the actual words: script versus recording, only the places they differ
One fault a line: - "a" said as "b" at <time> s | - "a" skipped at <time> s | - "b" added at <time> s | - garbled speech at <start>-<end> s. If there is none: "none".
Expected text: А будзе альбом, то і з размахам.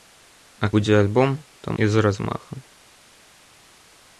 none